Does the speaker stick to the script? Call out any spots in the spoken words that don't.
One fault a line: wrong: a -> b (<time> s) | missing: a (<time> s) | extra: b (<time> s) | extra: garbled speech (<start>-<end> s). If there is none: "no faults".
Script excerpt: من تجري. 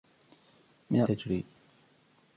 no faults